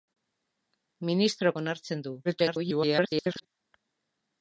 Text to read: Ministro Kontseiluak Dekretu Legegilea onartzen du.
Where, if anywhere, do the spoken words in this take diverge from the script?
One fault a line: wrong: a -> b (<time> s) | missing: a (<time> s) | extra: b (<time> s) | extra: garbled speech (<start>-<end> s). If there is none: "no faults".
missing: Kontseiluak Dekretu Legegilea (1.5 s)
extra: garbled speech (2.2-3.5 s)